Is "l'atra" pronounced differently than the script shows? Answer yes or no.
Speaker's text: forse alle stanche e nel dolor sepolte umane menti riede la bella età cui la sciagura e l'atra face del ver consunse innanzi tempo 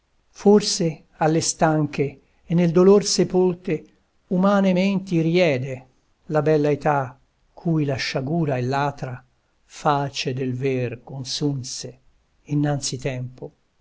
no